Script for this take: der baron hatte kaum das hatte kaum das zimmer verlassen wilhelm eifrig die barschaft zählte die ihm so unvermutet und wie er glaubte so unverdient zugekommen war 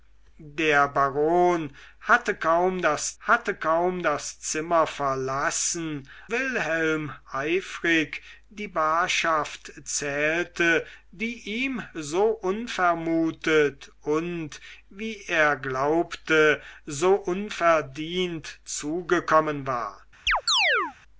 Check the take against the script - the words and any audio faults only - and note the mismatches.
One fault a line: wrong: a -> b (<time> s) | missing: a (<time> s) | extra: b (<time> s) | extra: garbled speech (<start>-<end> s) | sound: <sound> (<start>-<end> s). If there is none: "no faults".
sound: chirp (20.3-21.0 s)